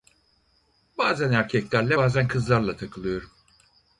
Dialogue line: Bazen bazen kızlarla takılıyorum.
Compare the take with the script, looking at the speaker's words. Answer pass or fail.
fail